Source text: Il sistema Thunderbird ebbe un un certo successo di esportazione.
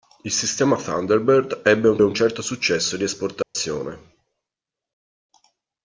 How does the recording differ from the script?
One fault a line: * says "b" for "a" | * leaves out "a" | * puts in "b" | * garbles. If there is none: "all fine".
all fine